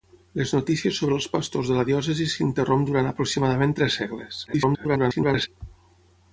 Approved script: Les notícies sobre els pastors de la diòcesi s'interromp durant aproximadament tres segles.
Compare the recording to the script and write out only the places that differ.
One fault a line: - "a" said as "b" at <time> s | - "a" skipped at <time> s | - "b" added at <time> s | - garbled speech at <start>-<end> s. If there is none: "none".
- garbled speech at 4.5-5.5 s